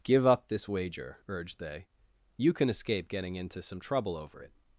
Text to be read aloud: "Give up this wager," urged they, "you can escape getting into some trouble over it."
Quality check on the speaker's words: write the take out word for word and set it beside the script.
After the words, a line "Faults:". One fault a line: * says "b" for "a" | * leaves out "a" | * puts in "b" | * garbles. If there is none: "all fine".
"Give up this wager," urged they, "you can escape getting into some trouble over it."
Faults:
all fine